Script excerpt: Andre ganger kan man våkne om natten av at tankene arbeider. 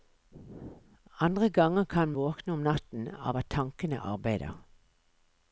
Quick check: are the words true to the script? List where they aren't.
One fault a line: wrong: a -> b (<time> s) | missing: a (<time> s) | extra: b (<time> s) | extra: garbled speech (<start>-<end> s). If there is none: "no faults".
missing: man (2.1 s)